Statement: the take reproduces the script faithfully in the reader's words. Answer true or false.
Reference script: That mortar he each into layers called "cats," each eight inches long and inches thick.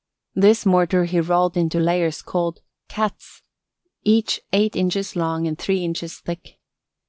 false